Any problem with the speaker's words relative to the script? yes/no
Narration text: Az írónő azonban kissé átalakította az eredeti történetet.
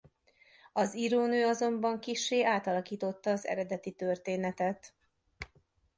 no